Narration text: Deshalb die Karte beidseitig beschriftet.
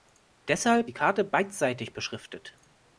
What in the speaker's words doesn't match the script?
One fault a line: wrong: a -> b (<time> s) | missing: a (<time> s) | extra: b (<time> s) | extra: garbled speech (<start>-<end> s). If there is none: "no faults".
no faults